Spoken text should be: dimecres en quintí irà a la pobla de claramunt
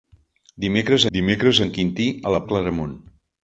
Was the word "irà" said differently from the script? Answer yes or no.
yes